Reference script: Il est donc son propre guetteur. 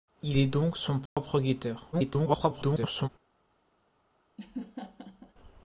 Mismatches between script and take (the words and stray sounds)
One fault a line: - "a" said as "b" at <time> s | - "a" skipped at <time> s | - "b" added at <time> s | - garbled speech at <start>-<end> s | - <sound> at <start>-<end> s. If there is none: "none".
- dropout at 1.1-1.2 s
- garbled speech at 1.9-3.1 s
- laugh at 4.4-5.3 s